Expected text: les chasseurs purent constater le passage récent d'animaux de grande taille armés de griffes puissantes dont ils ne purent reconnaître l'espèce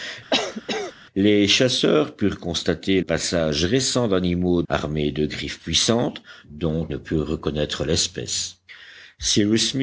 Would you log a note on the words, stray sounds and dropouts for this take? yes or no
yes